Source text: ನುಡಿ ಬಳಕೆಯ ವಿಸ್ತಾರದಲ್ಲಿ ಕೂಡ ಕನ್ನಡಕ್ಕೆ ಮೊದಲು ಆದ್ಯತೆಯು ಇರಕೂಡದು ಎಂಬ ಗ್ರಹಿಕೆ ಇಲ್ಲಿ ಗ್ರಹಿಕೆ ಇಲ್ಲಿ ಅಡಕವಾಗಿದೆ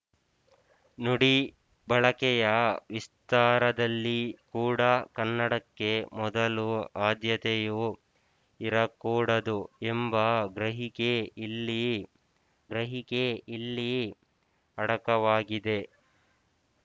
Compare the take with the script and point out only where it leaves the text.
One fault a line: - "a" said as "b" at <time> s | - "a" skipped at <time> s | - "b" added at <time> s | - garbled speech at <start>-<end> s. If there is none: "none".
none